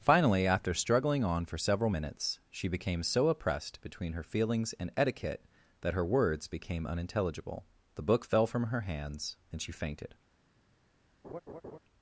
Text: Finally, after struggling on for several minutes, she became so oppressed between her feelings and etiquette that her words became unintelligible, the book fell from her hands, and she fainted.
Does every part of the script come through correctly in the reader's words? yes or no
yes